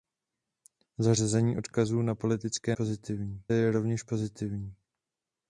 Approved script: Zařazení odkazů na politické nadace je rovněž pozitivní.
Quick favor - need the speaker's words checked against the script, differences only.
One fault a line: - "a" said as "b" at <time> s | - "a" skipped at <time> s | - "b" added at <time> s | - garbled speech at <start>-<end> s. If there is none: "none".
- "nadace" said as "pozitivní" at 2.7 s